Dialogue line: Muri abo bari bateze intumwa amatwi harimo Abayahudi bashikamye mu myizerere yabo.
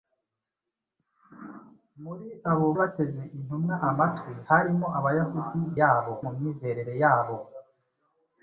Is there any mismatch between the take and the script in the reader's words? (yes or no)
yes